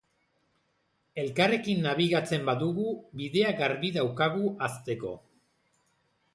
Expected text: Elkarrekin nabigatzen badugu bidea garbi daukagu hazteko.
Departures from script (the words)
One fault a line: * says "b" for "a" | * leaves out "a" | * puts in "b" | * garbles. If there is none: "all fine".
all fine